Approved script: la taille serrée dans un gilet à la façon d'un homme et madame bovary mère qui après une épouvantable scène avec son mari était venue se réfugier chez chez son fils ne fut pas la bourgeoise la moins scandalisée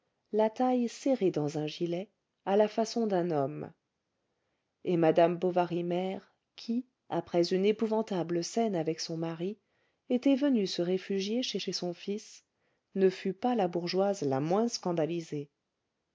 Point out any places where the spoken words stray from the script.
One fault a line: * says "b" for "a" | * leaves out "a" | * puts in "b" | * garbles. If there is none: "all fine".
all fine